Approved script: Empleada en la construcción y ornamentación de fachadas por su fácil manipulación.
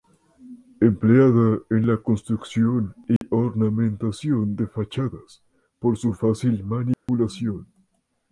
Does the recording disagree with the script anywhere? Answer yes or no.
no